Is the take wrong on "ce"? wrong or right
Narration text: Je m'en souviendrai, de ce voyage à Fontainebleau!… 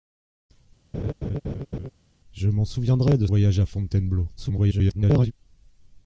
wrong